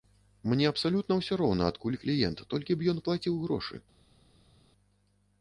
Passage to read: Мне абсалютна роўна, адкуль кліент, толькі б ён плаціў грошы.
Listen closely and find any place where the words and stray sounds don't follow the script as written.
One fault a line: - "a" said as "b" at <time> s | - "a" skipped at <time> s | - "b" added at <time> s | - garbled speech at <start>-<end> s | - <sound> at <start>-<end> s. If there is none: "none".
- "ўсё" added at 1.2 s